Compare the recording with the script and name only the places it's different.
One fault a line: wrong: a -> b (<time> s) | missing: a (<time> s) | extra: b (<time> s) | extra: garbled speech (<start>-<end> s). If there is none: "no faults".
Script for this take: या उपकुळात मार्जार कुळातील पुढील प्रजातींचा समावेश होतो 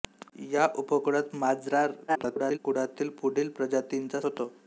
extra: garbled speech (2.1-2.6 s)
missing: समावेश (4.2 s)